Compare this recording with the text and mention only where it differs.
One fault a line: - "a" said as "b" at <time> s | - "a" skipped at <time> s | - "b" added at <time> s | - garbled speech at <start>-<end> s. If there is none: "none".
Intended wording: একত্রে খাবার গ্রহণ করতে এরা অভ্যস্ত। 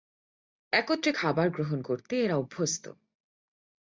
none